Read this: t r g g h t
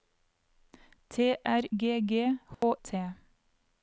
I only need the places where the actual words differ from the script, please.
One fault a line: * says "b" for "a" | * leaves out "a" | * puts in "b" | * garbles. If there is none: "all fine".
all fine